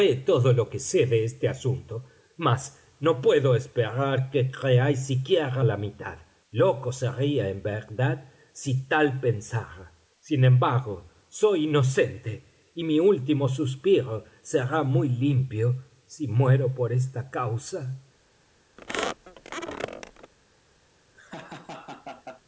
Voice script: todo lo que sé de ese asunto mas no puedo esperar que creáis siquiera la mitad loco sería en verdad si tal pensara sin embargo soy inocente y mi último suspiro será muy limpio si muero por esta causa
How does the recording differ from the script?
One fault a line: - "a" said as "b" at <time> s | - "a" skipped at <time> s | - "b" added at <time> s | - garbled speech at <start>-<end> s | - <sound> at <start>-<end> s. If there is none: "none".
- "ese" said as "este" at 1.2 s
- squeak at 18.8-20.3 s
- laugh at 21.1-22.4 s